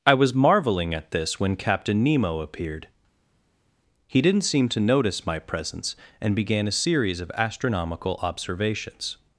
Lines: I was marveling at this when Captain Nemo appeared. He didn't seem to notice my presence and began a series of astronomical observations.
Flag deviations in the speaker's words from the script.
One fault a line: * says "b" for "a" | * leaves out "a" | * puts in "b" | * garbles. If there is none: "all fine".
all fine